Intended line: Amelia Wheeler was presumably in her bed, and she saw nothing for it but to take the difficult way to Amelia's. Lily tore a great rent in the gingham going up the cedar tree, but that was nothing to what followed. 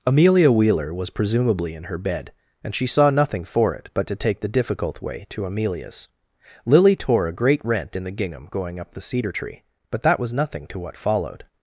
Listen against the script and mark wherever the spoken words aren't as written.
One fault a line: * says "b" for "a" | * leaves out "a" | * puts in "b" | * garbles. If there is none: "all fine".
all fine